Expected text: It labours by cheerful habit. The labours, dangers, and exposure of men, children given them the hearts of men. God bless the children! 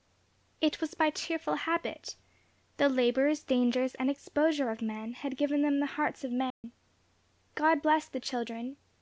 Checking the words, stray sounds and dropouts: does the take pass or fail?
fail